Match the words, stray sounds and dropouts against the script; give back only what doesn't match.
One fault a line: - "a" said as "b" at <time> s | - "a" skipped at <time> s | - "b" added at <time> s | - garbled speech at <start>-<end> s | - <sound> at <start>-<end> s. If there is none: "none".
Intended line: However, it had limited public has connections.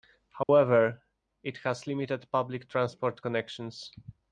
- dropout at 0.4-0.5 s
- "had" said as "has" at 1.6 s
- "has" said as "transport" at 2.7 s